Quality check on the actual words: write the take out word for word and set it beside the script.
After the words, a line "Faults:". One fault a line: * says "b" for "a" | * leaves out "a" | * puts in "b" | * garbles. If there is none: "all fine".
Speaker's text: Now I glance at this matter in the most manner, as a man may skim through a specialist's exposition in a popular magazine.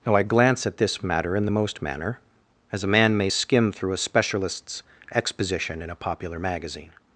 Now I glance at this matter in the most manner, as a man may skim through a specialist's exposition in a popular magazine.
Faults:
all fine